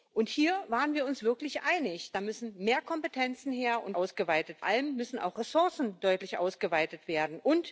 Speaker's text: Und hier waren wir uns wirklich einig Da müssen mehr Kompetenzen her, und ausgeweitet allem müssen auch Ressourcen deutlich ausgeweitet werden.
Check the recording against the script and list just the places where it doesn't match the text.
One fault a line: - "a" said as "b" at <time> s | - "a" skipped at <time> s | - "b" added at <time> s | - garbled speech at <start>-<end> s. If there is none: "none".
none